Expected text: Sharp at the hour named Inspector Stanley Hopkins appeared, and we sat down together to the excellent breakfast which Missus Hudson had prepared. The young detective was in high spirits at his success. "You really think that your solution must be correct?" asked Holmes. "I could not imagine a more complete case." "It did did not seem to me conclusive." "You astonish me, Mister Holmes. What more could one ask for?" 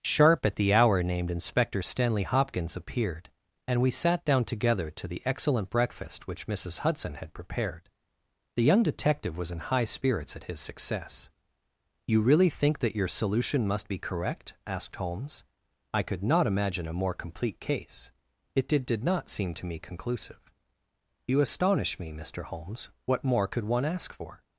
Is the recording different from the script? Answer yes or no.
no